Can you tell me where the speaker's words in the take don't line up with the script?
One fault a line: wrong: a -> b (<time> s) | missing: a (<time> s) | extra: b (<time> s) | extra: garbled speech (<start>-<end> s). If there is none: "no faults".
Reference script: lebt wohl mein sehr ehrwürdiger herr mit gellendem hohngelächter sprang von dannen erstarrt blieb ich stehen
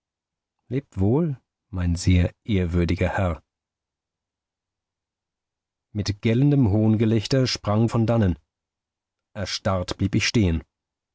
no faults